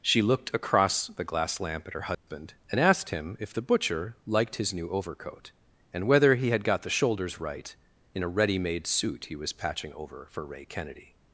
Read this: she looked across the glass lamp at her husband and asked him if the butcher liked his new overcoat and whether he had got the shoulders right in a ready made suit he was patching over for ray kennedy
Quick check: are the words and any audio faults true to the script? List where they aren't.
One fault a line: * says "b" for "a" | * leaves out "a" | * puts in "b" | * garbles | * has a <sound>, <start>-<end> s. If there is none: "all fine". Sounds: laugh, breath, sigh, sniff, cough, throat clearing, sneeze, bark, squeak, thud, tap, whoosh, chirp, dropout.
* has a dropout, 2.1-2.3 s